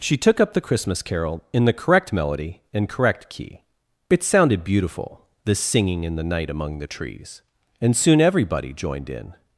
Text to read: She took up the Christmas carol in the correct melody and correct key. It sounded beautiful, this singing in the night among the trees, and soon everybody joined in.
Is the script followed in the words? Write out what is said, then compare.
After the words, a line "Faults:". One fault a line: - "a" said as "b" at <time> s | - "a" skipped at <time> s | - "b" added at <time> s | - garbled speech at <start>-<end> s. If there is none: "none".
She took up the Christmas carol in the correct melody and correct key. It sounded beautiful, this singing in the night among the trees, and soon everybody joined in.
Faults:
none